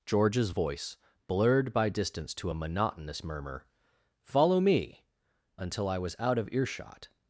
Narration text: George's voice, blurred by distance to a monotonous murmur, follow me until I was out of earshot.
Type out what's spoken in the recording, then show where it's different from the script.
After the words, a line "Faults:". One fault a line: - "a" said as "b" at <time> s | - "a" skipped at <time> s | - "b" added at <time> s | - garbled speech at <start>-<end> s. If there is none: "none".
George's voice, blurred by distance to a monotonous murmur, follow me until I was out of earshot.
Faults:
none